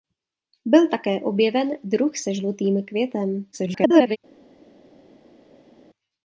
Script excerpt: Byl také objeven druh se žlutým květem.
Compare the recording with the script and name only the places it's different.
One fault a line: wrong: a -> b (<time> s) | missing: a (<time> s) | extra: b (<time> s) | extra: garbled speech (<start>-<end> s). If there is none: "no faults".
extra: garbled speech (3.5-4.2 s)